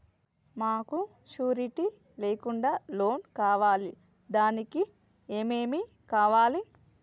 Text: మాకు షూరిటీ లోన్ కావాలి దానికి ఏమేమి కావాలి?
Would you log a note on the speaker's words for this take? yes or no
yes